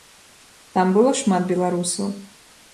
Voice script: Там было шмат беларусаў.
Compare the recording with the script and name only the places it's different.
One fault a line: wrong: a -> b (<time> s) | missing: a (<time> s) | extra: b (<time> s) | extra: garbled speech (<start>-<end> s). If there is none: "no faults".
no faults